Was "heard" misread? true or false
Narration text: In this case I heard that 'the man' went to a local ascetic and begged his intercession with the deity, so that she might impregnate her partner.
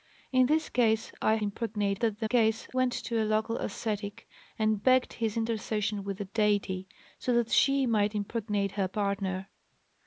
true